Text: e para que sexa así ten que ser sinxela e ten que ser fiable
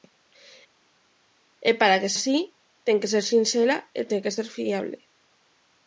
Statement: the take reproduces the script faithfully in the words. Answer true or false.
false